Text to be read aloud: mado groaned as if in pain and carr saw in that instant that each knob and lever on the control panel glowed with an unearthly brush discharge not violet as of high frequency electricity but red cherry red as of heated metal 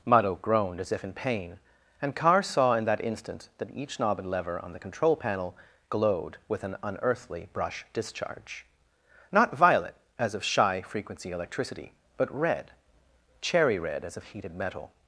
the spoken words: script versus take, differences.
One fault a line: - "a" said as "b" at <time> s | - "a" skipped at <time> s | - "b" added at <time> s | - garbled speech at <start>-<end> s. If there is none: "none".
- "high" said as "shy" at 10.4 s